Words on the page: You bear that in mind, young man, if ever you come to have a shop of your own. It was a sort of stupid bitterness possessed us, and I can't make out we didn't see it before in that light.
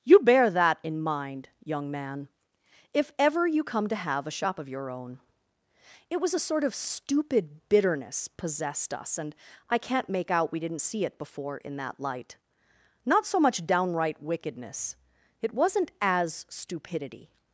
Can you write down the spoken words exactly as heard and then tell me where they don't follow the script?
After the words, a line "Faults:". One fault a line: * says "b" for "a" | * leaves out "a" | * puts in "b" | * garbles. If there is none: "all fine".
You bear that in mind, young man, if ever you come to have a shop of your own. It was a sort of stupid bitterness possessed us, and I can't make out we didn't see it before in that light. Not so much downright wickedness it wasn't as stupidity
Faults:
* puts in "Not so much downright wickedness it wasn't as stupidity"